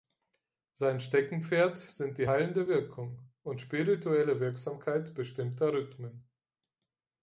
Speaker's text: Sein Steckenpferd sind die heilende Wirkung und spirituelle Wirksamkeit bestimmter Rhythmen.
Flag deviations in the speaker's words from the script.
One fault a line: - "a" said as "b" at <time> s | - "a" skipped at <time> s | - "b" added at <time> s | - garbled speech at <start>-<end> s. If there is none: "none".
none